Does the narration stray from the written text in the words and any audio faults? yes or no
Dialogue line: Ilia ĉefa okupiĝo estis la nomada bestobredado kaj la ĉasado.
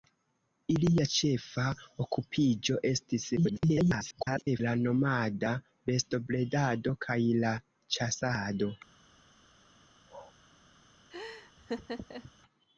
yes